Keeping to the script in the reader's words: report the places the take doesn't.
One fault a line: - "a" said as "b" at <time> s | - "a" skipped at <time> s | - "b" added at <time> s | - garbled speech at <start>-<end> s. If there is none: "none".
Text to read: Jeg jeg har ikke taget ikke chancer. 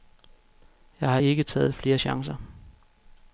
- "jeg" skipped at 1.1 s
- "ikke" said as "flere" at 1.7 s